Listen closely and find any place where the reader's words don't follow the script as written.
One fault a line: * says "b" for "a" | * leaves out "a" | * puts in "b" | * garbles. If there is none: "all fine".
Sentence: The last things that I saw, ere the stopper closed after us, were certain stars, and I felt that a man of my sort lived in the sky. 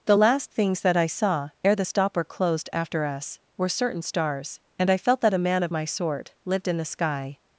all fine